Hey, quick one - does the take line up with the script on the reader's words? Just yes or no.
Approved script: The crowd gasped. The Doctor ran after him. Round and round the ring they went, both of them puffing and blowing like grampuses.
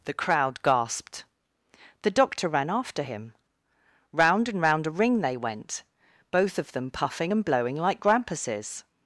no